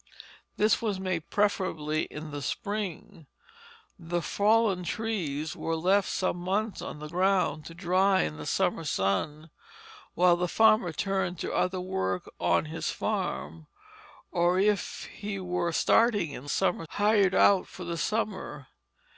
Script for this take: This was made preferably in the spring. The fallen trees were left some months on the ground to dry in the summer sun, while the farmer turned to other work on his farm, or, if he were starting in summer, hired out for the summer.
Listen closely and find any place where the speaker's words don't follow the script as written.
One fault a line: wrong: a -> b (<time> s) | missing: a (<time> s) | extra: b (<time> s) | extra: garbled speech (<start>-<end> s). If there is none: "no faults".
no faults